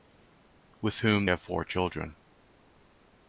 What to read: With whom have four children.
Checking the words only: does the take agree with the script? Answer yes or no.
yes